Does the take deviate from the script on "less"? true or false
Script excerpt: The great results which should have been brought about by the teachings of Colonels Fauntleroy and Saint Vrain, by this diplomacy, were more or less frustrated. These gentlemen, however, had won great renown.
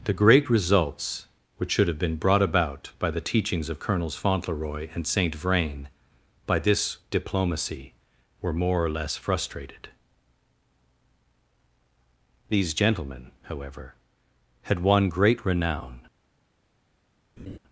false